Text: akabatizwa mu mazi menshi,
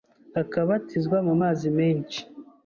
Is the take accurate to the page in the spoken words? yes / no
yes